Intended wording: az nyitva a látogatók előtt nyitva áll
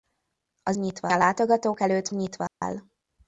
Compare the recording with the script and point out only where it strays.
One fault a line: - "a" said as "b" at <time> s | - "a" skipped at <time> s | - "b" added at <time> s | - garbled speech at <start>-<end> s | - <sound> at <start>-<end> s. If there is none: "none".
- dropout at 2.5-2.6 s